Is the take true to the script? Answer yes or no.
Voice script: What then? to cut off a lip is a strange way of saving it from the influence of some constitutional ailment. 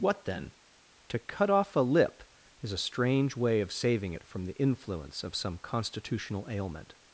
yes